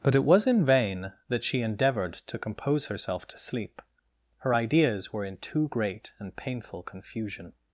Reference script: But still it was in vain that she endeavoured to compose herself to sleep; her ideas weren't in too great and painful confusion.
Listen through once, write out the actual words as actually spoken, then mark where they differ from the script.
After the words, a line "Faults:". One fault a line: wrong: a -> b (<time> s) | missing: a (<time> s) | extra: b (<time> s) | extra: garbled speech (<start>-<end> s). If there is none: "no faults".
But it was in vain that she endeavoured to compose herself to sleep; her ideas were in too great and painful confusion.
Faults:
missing: still (0.1 s)
wrong: weren't -> were (5.1 s)